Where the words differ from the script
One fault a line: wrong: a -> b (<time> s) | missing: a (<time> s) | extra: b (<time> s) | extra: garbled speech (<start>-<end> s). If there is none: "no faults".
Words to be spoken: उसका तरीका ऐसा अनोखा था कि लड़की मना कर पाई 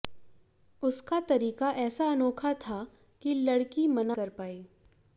no faults